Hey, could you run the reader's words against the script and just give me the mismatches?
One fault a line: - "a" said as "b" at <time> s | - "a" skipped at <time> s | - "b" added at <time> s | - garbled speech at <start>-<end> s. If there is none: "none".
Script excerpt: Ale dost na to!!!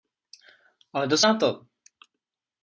none